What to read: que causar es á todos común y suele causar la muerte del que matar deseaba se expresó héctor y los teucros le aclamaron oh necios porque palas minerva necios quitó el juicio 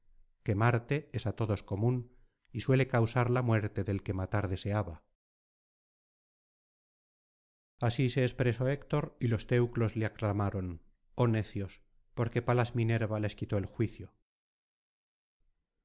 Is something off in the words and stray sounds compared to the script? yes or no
yes